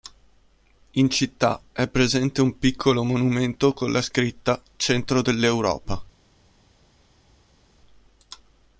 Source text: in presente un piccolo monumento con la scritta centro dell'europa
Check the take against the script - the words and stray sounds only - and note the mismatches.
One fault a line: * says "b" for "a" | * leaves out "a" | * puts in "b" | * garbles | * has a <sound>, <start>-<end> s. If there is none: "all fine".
* puts in "città è"